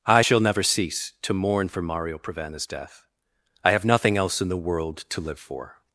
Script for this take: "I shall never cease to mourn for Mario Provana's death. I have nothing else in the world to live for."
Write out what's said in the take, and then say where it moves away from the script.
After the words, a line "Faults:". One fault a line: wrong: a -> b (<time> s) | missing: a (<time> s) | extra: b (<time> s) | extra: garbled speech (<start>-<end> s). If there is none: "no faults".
"I shall never cease to mourn for Mario Provana's death. I have nothing else in the world to live for."
Faults:
no faults